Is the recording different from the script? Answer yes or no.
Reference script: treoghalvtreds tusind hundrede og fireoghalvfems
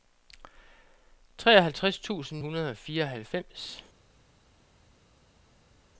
no